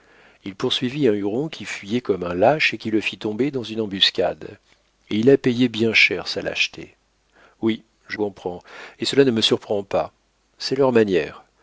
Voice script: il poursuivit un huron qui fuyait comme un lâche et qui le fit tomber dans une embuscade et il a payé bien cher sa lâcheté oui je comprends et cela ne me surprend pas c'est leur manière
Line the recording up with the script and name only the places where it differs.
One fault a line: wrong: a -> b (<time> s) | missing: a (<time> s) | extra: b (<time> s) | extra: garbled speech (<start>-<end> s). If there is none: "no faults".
no faults